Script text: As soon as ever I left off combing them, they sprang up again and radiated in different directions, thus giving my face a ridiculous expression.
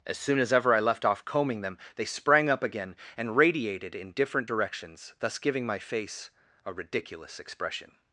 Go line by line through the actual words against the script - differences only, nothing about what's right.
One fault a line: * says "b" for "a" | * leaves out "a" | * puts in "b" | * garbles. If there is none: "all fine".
all fine